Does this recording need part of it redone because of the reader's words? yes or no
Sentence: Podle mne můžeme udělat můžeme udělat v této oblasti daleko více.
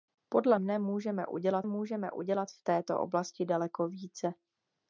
no